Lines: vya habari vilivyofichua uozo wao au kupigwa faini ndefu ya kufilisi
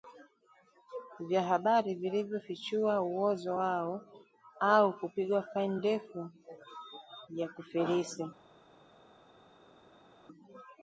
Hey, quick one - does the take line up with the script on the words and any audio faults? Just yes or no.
yes